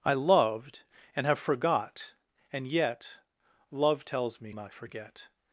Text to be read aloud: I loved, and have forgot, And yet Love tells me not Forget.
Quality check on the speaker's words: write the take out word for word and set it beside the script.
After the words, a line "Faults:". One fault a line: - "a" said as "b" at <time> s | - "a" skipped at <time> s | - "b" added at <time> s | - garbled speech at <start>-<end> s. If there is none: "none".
I loved, and have forgot, And yet Love tells me not Forget.
Faults:
none